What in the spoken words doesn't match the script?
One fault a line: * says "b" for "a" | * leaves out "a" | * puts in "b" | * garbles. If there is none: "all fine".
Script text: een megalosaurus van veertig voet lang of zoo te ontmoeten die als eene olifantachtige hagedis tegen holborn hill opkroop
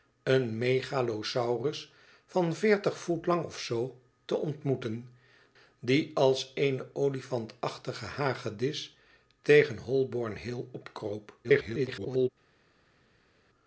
* garbles